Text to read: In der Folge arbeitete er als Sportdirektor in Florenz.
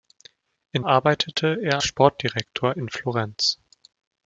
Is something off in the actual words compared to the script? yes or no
yes